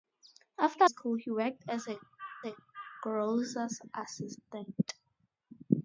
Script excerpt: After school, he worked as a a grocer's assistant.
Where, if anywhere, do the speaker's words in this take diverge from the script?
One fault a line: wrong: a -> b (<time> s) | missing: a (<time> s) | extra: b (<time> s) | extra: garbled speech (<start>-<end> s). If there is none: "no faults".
no faults